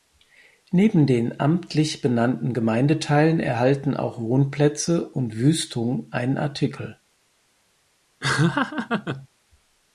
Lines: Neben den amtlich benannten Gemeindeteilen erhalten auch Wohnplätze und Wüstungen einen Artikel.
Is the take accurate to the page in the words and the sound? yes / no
no